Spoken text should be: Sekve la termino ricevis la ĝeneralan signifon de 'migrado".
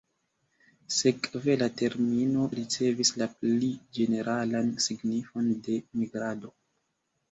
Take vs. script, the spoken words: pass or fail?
fail